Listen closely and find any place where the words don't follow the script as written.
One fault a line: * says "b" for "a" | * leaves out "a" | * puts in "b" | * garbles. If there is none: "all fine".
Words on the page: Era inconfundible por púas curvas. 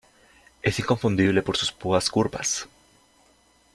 * says "Es" for "Era"
* puts in "sus"